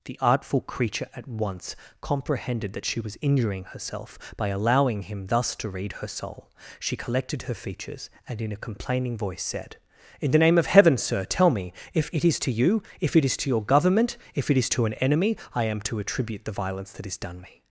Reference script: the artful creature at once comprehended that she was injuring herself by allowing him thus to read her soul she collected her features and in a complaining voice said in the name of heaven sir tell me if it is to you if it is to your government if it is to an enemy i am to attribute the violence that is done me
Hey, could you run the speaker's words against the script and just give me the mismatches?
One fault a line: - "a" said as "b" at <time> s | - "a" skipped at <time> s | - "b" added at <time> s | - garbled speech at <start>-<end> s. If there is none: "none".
none